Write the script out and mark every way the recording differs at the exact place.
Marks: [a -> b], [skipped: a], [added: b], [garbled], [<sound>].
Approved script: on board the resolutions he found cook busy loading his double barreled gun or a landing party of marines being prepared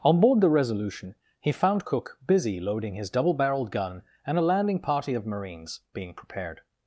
on board the [resolutions -> resolution] he found cook busy loading his double barreled gun [or -> and] a landing party of marines being prepared